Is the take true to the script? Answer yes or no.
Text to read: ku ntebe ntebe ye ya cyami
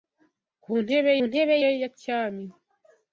yes